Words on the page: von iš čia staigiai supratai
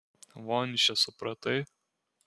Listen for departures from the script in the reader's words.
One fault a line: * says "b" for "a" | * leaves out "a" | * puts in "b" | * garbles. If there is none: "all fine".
* leaves out "staigiai"